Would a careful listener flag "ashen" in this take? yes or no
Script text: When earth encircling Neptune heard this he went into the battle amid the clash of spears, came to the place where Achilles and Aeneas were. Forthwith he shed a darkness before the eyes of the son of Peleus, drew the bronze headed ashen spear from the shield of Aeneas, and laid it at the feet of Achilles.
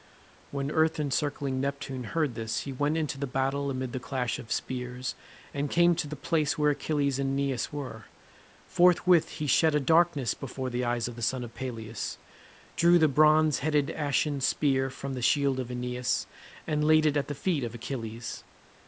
no